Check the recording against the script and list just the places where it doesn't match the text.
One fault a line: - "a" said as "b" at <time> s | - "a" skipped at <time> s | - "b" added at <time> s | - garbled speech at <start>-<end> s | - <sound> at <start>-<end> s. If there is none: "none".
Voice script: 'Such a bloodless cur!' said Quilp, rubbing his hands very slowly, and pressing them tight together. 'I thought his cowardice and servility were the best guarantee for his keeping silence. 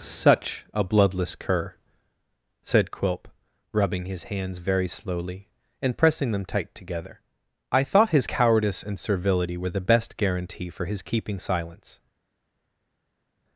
none